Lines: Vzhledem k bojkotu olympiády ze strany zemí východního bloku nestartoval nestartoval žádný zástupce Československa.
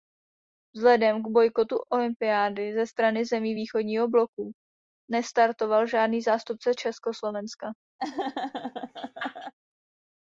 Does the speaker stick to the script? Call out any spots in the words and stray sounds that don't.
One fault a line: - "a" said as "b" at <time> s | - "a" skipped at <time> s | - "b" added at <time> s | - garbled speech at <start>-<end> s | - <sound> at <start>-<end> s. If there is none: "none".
- "nestartoval" skipped at 5.9 s
- laugh at 8.0-9.5 s